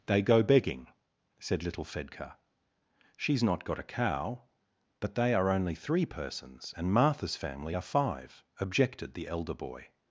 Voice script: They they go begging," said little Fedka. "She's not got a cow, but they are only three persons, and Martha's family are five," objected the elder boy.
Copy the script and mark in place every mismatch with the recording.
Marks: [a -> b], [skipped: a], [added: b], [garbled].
They [skipped: they] go begging," said little Fedka. "She's not got a cow, but they are only three persons, and Martha's family are five," objected the elder boy.